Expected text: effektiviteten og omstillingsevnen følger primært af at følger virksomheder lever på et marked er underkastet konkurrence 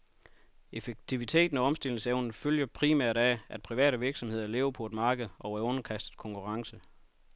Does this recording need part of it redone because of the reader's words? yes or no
yes